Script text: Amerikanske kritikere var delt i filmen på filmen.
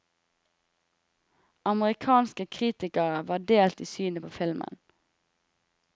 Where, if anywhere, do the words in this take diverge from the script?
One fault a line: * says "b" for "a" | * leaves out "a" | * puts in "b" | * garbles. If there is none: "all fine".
* says "synet" for "filmen"